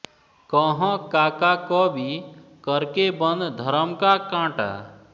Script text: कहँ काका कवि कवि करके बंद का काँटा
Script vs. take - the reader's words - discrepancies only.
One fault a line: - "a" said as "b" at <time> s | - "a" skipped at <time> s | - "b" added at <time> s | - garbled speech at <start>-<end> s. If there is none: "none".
- "कवि" skipped at 2.2 s
- "धरम" added at 3.6 s